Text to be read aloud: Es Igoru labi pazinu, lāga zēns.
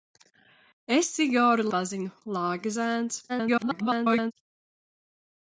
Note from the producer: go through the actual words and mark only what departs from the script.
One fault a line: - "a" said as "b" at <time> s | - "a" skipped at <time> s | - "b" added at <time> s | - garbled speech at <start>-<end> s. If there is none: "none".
- "labi" skipped at 1.7 s
- garbled speech at 3.3-4.3 s